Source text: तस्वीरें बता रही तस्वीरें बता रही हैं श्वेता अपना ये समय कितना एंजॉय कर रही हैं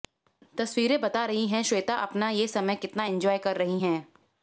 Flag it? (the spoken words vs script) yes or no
yes